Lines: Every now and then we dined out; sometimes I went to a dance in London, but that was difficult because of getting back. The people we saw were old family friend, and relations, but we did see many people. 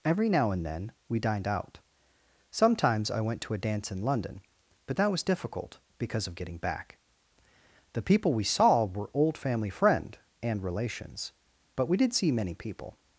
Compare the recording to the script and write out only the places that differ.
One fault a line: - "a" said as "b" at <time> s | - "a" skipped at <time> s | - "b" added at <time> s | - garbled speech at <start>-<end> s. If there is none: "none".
none